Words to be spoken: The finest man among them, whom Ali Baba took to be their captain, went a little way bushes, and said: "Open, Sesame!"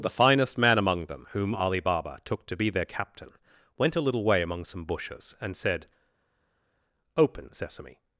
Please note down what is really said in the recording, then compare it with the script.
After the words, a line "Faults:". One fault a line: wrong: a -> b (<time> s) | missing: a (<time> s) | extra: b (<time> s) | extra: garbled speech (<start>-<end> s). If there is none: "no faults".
The finest man among them, whom Ali Baba took to be their captain, went a little way among some bushes, and said: "Open, Sesame!"
Faults:
extra: among some (4.4 s)